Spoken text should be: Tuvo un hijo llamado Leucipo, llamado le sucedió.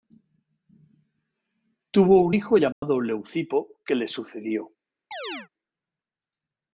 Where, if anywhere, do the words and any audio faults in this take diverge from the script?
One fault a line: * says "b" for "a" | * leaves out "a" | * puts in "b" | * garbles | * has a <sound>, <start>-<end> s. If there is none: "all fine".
* has a dropout, 2.7-2.8 s
* says "que" for "llamado"
* has a chirp, 5.1-5.5 s